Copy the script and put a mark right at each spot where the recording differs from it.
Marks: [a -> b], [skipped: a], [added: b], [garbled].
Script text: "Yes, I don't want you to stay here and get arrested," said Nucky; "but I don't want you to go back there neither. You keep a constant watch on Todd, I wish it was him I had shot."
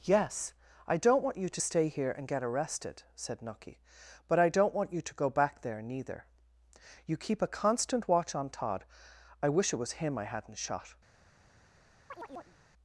"Yes, I don't want you to stay here and get arrested," said Nucky; "but I don't want you to go back there neither. You keep a constant watch on Todd, I wish it was him I [had -> hadn't] shot."